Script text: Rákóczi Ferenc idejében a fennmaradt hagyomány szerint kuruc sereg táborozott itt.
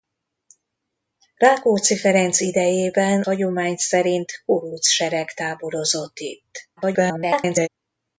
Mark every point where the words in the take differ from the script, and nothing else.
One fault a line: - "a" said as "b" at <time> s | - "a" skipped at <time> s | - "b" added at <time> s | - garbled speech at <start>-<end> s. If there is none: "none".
- "a fennmaradt" skipped at 3.2 s
- garbled speech at 6.8-7.7 s